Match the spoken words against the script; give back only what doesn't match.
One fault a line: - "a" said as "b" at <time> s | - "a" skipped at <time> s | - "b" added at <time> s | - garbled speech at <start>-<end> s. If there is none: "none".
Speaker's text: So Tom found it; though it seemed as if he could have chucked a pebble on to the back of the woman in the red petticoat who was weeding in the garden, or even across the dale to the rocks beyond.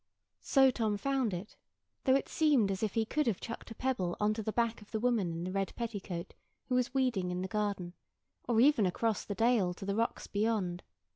none